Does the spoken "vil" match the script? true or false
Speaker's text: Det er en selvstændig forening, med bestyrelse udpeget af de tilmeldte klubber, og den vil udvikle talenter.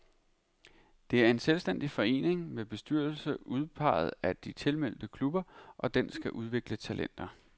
false